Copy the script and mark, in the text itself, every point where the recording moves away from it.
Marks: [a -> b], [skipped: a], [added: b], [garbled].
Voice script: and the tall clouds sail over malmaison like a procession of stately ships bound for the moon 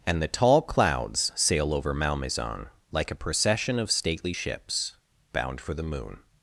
and the tall clouds sail over malmaison like a procession of stately ships bound for the moon